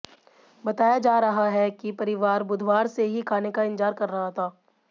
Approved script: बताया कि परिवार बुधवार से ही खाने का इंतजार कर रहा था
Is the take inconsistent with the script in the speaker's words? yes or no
yes